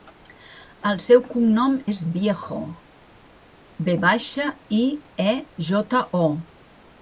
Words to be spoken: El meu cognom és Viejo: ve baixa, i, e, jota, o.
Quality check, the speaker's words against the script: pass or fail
fail